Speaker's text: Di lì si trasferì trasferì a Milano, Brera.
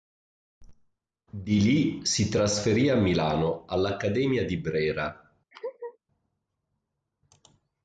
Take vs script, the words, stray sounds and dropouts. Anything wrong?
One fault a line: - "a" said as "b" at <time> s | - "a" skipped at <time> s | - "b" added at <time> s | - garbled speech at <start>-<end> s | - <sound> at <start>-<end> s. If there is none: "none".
- "trasferì" skipped at 2.9 s
- "all'Accademia di" added at 3.7 s
- laugh at 5.5-6.0 s